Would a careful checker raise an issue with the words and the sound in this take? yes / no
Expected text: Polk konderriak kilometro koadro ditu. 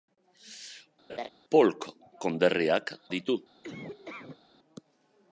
yes